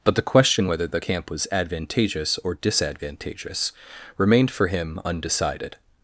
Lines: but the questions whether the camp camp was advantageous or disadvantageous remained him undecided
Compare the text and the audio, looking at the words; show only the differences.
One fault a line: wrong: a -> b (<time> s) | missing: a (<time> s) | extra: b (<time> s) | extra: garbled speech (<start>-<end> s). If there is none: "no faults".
wrong: questions -> question (0.2 s)
missing: camp (1.3 s)
extra: for (4.5 s)